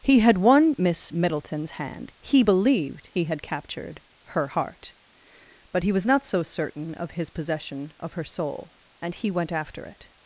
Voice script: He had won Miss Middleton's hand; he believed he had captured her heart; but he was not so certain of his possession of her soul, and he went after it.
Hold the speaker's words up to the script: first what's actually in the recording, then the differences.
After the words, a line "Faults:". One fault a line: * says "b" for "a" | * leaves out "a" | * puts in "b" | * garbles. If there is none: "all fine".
He had won Miss Middleton's hand; he believed he had captured her heart; but he was not so certain of his possession of her soul, and he went after it.
Faults:
all fine